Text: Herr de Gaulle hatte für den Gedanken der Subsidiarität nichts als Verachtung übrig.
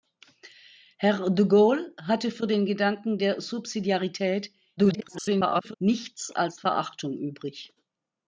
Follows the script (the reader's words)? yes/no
no